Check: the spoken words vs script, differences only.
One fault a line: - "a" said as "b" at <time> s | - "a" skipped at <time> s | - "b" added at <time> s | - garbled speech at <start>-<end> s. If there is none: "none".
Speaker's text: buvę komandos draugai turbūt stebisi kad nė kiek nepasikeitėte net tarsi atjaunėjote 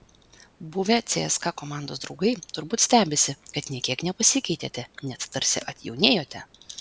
- "cska" added at 1.1 s